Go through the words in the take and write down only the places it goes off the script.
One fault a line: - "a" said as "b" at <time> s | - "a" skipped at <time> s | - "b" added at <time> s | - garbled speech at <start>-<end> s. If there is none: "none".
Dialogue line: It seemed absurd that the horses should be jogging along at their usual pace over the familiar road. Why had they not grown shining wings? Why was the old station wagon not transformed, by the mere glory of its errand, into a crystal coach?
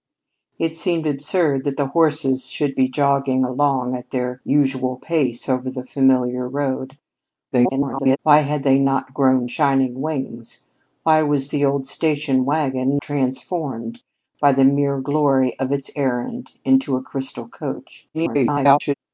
- garbled speech at 7.5-8.2 s
- "not" skipped at 13.0 s
- garbled speech at 18.1-18.9 s